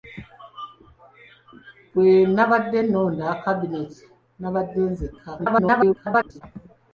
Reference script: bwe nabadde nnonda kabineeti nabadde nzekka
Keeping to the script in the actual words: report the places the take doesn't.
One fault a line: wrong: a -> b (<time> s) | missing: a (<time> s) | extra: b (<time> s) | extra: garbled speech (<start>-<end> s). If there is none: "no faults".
extra: garbled speech (5.4-6.4 s)